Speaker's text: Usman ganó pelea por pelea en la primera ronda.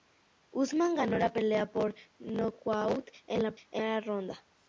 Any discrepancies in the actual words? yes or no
yes